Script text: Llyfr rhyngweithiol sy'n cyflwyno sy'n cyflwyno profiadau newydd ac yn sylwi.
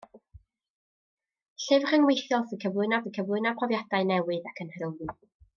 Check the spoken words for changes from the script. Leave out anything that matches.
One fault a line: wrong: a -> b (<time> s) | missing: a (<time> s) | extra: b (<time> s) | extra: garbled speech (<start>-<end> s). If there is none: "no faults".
no faults